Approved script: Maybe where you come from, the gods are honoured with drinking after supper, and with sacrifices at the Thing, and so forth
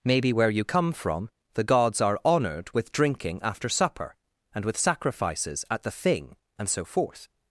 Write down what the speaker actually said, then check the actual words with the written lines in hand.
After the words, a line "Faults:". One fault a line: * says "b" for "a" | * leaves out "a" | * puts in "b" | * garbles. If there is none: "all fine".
Maybe where you come from, the gods are honoured with drinking after supper, and with sacrifices at the Thing, and so forth
Faults:
all fine